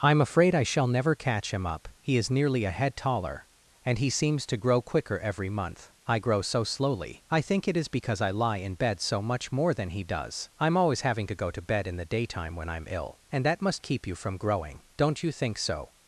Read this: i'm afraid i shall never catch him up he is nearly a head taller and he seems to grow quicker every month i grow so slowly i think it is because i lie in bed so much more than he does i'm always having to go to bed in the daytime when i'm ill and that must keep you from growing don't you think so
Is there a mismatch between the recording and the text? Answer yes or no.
no